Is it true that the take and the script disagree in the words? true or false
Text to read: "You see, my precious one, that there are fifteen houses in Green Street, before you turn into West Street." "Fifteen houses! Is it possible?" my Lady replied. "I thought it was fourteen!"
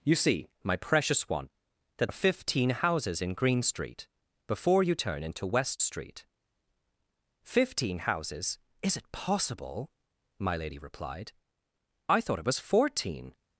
true